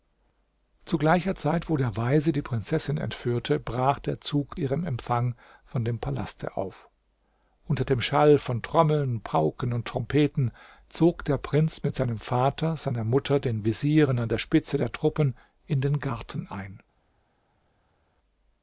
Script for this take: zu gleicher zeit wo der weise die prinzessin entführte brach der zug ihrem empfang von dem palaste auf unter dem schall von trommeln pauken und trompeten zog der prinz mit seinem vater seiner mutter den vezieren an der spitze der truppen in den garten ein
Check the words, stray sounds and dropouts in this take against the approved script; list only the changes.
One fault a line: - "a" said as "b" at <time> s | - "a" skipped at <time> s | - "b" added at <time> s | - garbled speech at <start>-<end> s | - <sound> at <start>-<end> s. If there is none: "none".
none